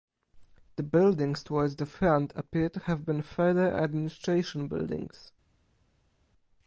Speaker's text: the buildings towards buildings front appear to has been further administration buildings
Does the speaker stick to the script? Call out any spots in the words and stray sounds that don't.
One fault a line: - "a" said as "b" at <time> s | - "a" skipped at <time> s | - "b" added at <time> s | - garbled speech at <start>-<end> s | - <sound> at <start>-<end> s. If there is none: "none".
- "buildings" said as "the" at 1.8 s
- "has" said as "have" at 2.8 s